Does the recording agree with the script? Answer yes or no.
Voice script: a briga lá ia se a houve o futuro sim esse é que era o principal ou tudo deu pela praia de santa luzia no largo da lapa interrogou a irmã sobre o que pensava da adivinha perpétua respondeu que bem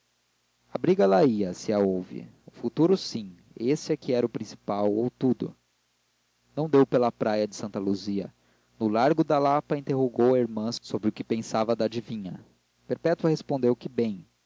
no